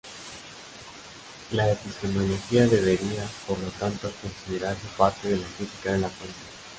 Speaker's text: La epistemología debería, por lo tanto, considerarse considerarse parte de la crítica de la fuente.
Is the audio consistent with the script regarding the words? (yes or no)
no